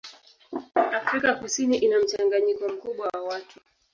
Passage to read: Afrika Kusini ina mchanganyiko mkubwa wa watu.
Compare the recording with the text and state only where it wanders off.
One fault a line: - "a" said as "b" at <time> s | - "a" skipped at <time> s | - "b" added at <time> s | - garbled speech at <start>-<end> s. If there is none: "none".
none